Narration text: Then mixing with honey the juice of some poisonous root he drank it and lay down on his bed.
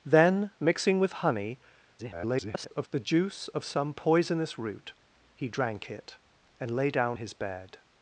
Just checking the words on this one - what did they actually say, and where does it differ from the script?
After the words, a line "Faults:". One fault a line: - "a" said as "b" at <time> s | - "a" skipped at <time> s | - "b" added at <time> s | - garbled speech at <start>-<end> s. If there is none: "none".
Then mixing with honey [garbled] the juice of some poisonous root he drank it and lay down his bed.
Faults:
- garbled speech at 2.0-2.9 s
- "on" skipped at 7.2 s